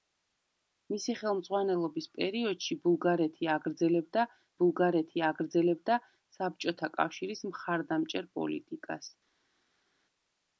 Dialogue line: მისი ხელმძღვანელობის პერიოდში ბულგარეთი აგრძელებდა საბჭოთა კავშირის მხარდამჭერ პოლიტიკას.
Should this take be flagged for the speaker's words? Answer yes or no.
yes